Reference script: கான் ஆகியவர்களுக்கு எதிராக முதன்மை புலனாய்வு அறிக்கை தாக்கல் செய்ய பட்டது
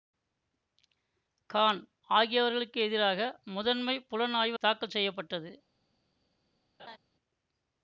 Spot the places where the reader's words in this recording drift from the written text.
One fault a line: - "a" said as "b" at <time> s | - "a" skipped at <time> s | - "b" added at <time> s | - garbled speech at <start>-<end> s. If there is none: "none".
- "அறிக்கை" skipped at 4.6 s